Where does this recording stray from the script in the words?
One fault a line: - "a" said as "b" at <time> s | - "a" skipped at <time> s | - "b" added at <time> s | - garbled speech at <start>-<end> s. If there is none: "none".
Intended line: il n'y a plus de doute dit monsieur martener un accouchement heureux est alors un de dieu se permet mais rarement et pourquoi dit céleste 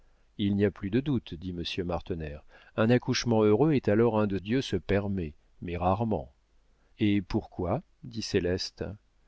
none